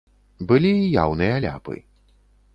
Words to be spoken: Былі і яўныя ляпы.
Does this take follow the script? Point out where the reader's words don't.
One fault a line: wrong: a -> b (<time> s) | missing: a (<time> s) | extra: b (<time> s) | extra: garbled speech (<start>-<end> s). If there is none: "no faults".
no faults